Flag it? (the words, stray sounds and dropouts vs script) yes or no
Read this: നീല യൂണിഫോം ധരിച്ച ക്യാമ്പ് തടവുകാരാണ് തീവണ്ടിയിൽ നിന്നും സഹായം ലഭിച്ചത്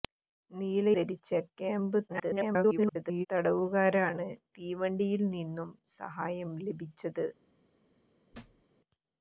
yes